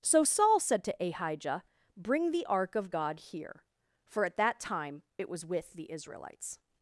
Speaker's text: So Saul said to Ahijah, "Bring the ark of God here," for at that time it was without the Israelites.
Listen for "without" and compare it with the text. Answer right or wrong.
wrong